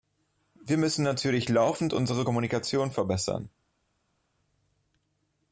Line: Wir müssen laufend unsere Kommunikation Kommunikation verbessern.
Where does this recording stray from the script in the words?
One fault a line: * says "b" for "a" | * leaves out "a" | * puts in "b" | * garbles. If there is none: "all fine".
* puts in "natürlich"
* leaves out "Kommunikation"